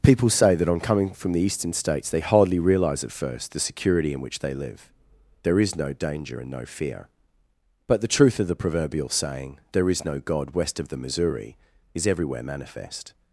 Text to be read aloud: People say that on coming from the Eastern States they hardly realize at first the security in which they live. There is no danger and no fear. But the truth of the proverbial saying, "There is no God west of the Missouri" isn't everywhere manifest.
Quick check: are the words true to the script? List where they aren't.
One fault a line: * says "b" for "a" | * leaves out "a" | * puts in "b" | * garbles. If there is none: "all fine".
* says "is" for "isn't"